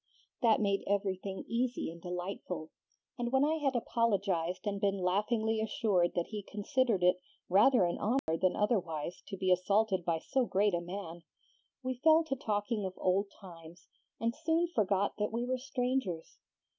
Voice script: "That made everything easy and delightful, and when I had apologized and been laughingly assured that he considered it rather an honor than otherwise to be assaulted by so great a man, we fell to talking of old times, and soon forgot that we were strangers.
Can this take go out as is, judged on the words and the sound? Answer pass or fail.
fail